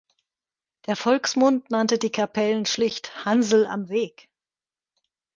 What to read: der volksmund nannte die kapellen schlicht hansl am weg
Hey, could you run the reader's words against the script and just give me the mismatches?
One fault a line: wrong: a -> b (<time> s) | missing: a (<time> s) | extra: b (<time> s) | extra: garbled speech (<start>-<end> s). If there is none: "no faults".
no faults